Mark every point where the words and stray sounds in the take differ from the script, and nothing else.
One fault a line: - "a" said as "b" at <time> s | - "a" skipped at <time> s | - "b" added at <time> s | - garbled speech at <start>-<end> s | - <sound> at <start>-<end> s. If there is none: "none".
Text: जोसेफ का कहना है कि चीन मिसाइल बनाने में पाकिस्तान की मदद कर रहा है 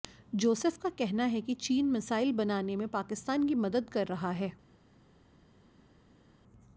none